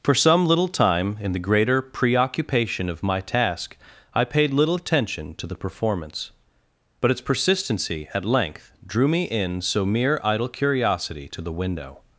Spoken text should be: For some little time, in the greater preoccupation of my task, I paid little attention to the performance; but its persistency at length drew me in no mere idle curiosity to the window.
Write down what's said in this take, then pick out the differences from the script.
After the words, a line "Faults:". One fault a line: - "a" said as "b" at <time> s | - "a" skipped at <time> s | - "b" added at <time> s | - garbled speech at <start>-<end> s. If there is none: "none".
For some little time, in the greater preoccupation of my task, I paid little attention to the performance; but its persistency at length drew me in so mere idle curiosity to the window.
Faults:
- "no" said as "so" at 9.6 s